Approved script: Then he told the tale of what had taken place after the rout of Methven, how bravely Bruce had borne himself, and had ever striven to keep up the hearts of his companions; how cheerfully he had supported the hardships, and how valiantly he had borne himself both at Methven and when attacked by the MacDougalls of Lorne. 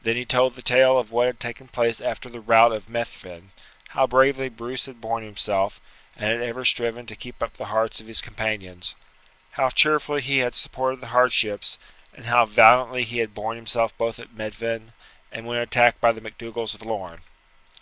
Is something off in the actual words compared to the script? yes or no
no